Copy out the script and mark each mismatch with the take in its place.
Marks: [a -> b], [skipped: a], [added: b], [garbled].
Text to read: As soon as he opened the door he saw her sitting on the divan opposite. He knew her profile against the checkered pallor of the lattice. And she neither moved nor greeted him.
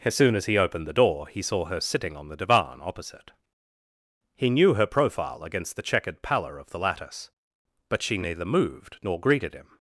As soon as he opened the door he saw her sitting on the divan opposite. He knew her profile against the checkered pallor of the lattice. [And -> But] she neither moved nor greeted him.